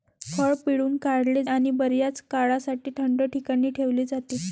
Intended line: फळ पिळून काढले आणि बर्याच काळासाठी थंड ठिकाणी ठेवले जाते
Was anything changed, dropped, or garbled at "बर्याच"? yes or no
no